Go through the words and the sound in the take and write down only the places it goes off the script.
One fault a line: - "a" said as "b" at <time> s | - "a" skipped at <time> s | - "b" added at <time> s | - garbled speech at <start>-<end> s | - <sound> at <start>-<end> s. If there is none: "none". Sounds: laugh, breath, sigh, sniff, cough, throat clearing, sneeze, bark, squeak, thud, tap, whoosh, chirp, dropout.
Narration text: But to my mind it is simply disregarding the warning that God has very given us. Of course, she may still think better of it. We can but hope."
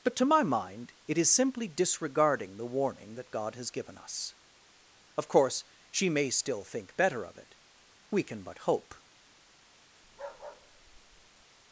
- "very" skipped at 3.7 s
- bark at 10.0-11.4 s